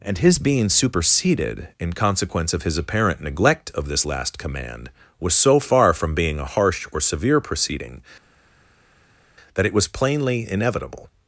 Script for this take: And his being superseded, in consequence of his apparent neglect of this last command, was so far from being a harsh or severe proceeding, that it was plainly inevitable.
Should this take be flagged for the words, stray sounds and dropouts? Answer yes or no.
no